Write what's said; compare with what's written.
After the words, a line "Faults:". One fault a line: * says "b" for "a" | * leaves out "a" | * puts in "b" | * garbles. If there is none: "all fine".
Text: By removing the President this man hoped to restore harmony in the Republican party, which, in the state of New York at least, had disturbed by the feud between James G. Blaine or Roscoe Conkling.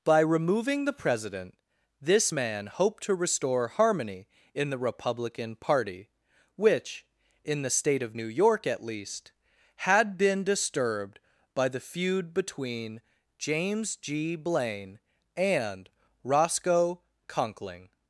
By removing the President this man hoped to restore harmony in the Republican party, which, in the state of New York at least, had been disturbed by the feud between James G. Blaine and Roscoe Conkling.
Faults:
* puts in "been"
* says "and" for "or"